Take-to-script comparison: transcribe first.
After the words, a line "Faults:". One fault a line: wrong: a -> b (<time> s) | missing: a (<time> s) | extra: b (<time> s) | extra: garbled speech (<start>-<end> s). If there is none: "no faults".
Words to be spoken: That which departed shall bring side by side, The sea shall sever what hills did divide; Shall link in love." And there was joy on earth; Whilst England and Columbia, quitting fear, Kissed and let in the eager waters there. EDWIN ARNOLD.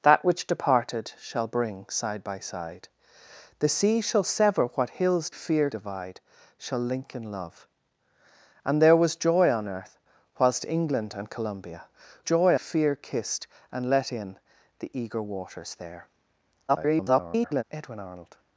That which departed shall bring side by side, The sea shall sever what hills fear divide; Shall link in love." And there was joy on earth; Whilst England and Columbia, joy fear, Kissed and let in the eager waters there. [garbled] EDWIN ARNOLD.
Faults:
wrong: did -> fear (5.3 s)
wrong: quitting -> joy (12.2 s)
extra: garbled speech (16.7-17.6 s)